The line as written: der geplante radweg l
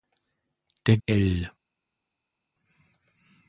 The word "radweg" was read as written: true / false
false